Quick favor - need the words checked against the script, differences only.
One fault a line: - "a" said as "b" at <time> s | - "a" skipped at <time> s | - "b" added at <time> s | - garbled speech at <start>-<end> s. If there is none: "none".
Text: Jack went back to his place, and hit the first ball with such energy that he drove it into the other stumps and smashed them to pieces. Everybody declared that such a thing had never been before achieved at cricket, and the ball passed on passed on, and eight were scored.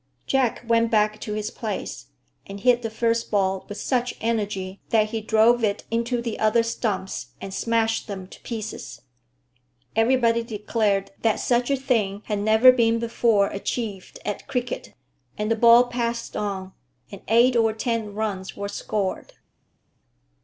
- "passed on and eight" said as "and eight or ten runs" at 17.1 s